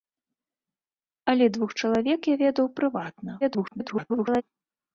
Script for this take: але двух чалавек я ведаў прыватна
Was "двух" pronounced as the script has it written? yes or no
yes